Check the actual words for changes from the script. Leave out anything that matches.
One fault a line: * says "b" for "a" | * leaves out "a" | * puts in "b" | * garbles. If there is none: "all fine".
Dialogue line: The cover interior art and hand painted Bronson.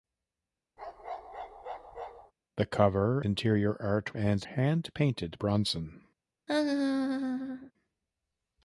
all fine